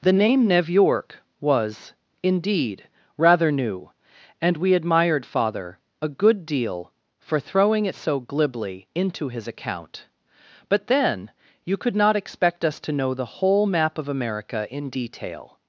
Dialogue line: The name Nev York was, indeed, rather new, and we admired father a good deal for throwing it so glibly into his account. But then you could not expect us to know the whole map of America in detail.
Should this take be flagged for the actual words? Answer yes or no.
no